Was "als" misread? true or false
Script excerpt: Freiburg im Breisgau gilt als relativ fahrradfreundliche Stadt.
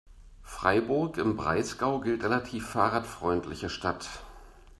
true